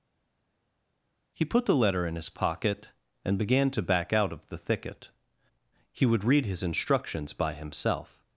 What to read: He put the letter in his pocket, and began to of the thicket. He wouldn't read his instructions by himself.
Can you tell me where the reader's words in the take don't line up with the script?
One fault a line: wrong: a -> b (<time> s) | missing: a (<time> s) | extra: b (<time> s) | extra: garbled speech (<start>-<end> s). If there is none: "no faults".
extra: back out (3.8 s)
wrong: wouldn't -> would (6.0 s)